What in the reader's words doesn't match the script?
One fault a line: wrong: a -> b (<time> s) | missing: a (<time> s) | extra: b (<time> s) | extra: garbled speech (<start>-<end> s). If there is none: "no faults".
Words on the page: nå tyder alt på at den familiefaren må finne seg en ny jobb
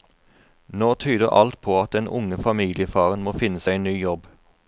extra: unge (2.2 s)